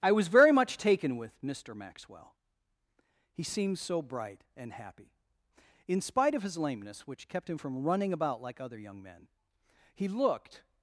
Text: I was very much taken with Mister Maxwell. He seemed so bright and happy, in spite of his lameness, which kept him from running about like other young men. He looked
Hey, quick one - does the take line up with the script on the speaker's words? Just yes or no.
yes